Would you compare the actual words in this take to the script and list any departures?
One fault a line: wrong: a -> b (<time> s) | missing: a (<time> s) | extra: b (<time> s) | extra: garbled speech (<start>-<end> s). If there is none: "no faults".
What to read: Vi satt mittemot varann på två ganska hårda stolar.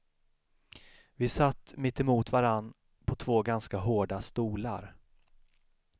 no faults